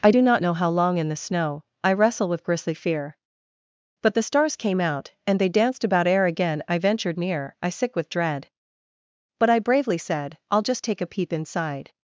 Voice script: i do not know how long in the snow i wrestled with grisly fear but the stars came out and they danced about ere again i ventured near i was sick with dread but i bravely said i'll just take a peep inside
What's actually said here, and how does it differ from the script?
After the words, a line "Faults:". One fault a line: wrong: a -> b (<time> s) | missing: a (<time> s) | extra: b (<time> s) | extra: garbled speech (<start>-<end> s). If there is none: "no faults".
i do not know how long in the snow i wrestle with grisly fear but the stars came out and they danced about ere again i ventured near i sick with dread but i bravely said i'll just take a peep inside
Faults:
wrong: wrestled -> wrestle (1.9 s)
missing: was (7.7 s)